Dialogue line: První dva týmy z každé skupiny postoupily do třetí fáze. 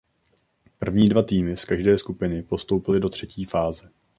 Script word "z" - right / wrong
right